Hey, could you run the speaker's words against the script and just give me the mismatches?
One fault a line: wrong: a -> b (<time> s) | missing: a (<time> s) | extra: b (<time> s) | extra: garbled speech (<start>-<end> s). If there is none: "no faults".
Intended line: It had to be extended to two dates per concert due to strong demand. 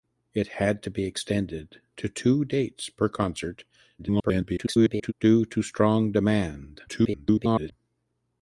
extra: garbled speech (4.0-5.1 s)
extra: garbled speech (6.9-7.7 s)